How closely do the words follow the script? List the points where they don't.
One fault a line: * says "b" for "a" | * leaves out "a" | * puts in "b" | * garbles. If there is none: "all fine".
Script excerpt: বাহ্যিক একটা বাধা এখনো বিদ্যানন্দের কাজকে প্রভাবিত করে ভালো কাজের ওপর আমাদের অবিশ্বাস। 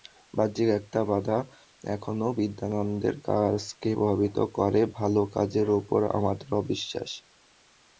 all fine